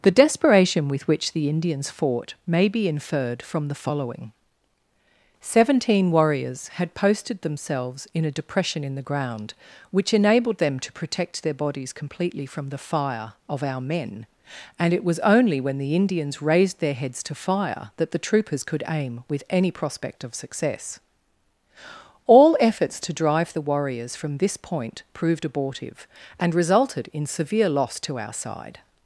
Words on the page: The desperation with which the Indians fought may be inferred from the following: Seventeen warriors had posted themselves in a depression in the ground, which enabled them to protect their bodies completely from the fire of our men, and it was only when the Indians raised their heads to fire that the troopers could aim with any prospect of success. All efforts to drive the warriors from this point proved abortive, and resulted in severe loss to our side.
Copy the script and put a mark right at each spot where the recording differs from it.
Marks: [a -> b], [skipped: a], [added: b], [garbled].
The desperation with which the Indians fought may be inferred from the following: Seventeen warriors had posted themselves in a depression in the ground, which enabled them to protect their bodies completely from the fire of our men, and it was only when the Indians raised their heads to fire that the troopers could aim with any prospect of success. All efforts to drive the warriors from this point proved abortive, and resulted in severe loss to our side.